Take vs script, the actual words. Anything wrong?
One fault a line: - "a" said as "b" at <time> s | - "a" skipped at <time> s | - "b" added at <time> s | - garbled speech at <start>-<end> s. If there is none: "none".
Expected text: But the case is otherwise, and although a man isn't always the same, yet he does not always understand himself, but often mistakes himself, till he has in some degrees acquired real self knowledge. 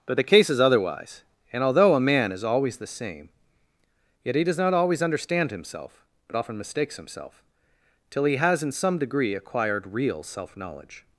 - "isn't" said as "is" at 2.3 s
- "degrees" said as "degree" at 9.0 s